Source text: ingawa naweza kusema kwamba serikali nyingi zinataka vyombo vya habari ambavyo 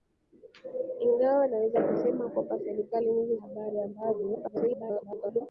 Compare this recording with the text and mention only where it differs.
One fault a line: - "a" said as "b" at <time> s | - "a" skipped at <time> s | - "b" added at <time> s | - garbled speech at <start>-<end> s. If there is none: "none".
- "zinataka vyombo vya" skipped at 3.4 s
- garbled speech at 4.3-5.4 s